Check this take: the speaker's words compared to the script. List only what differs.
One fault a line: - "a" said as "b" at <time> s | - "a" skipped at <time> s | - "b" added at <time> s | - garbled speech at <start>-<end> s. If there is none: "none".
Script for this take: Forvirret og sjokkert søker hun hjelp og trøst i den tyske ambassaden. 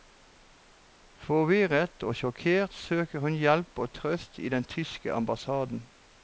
none